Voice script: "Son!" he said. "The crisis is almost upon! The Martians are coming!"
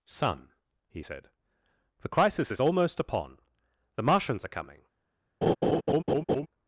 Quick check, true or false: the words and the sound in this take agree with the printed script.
false